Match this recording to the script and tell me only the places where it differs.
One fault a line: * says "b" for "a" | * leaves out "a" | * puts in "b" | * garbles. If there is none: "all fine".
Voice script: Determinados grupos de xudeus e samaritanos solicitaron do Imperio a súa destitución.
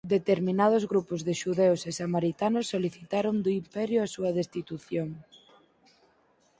all fine